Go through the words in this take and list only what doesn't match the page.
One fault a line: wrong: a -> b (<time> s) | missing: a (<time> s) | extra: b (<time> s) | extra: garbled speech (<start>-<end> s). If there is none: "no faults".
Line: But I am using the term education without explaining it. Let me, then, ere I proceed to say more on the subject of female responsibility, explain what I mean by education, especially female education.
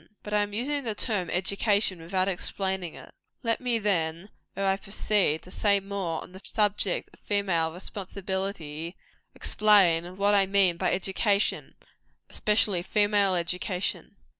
no faults